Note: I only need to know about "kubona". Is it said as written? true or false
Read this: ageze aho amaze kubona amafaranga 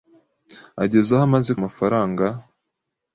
false